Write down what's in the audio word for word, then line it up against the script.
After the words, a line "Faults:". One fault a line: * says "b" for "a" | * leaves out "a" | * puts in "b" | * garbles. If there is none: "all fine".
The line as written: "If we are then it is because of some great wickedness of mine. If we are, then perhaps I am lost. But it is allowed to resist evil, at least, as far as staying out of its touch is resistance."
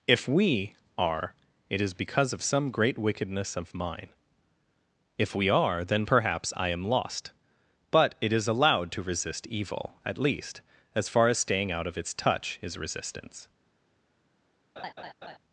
"If we are it is because of some great wickedness of mine. If we are, then perhaps I am lost. But it is allowed to resist evil, at least, as far as staying out of its touch is resistance."
Faults:
* leaves out "then"